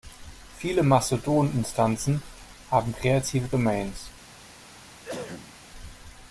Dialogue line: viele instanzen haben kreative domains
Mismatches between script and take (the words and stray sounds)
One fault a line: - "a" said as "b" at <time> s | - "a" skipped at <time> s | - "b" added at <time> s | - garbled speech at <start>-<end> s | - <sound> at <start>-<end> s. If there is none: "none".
- "mastodon" added at 0.8 s
- cough at 4.5-5.6 s